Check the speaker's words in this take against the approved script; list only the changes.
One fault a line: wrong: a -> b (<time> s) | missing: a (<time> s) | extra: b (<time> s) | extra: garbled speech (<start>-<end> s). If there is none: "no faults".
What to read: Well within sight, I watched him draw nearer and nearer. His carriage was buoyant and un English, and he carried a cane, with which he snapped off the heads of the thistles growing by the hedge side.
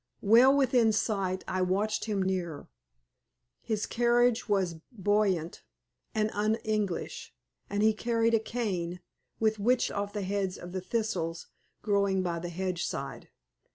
missing: draw (2.2 s)
missing: and nearer (2.7 s)
missing: he snapped (9.9 s)